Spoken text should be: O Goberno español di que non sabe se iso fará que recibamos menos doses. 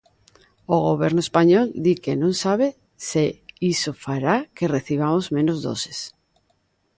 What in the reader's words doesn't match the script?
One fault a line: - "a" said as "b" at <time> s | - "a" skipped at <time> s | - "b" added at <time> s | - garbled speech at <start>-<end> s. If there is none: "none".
none